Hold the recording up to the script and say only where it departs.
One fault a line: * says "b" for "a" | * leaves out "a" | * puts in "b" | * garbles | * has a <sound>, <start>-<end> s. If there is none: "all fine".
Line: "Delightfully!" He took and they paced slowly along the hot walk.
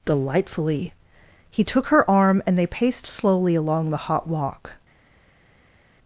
* puts in "her arm"